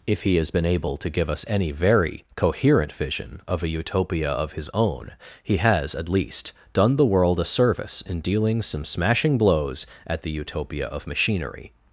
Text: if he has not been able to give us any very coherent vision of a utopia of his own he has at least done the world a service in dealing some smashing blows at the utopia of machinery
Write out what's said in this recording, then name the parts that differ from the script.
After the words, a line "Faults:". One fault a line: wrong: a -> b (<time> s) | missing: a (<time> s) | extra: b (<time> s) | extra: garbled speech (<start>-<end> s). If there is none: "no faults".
if he has been able to give us any very coherent vision of a utopia of his own he has at least done the world a service in dealing some smashing blows at the utopia of machinery
Faults:
missing: not (0.5 s)